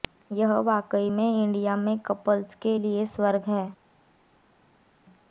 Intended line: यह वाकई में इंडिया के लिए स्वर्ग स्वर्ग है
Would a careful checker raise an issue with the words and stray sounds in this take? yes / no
yes